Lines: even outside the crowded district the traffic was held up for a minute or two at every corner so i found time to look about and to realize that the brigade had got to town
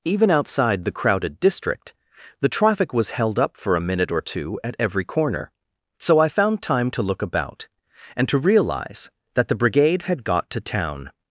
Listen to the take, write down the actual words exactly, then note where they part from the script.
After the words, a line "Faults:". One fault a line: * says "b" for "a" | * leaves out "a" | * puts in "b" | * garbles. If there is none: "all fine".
even outside the crowded district the traffic was held up for a minute or two at every corner so i found time to look about and to realize that the brigade had got to town
Faults:
all fine